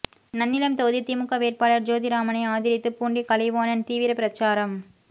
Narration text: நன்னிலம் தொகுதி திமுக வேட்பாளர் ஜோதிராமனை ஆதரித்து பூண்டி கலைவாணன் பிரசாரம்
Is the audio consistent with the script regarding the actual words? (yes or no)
no